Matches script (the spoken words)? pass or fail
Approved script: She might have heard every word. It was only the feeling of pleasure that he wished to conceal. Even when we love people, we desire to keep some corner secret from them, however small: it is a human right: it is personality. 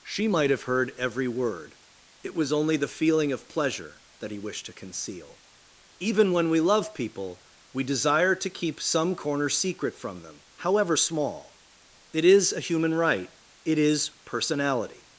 pass